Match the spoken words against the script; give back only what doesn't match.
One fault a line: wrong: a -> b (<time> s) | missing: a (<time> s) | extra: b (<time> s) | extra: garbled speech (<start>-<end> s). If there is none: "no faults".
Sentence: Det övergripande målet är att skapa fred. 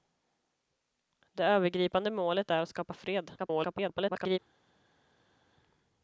extra: garbled speech (3.4-4.4 s)